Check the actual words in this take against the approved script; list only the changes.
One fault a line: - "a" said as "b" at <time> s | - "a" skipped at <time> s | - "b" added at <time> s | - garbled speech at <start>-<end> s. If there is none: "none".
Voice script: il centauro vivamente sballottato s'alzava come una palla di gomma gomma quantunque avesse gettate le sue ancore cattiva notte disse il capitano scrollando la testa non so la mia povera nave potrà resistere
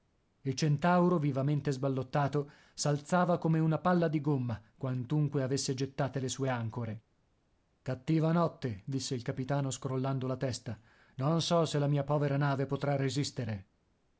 - "gomma" skipped at 4.6 s
- "se" added at 11.6 s